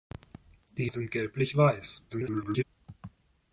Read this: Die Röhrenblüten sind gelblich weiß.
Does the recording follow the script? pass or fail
fail